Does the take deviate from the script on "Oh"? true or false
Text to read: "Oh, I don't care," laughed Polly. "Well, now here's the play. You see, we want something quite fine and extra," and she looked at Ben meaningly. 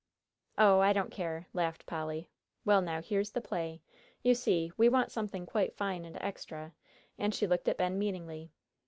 false